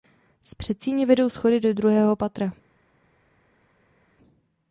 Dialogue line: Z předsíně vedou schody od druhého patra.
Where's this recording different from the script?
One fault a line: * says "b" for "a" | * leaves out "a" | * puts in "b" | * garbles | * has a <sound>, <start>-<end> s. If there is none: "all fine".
* says "do" for "od"